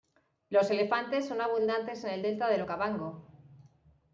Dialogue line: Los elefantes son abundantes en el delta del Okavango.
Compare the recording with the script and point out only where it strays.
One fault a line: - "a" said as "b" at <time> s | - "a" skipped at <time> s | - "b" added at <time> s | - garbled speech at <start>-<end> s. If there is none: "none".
none